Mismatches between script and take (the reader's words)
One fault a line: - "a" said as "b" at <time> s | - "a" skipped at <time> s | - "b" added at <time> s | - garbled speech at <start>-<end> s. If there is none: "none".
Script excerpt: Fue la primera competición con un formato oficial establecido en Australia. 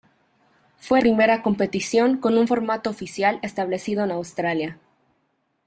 - "la" skipped at 1.0 s